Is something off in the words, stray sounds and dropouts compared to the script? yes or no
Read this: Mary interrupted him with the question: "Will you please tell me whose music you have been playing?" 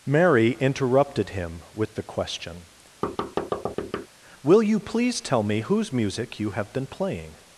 yes